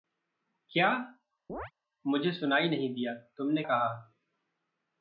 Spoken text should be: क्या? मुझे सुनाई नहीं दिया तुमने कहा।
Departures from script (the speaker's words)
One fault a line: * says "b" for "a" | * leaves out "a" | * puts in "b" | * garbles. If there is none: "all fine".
all fine